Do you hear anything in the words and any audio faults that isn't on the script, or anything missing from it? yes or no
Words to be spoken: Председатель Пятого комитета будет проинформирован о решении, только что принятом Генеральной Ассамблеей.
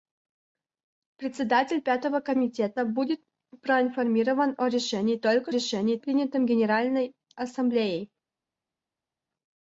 yes